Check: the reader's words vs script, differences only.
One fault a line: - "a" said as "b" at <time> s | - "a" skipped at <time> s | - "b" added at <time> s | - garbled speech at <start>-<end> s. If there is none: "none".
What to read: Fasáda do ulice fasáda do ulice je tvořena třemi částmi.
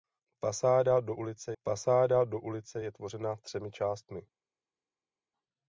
none